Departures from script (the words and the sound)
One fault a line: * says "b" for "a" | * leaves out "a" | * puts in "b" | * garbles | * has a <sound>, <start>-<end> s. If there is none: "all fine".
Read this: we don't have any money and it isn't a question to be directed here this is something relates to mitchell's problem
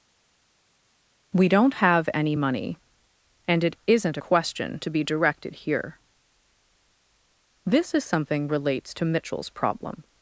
all fine